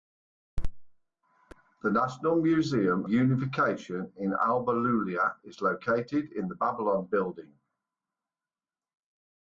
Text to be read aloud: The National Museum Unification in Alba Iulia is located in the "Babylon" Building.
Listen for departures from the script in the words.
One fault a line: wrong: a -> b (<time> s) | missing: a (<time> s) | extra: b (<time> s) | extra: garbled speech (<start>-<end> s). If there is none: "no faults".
no faults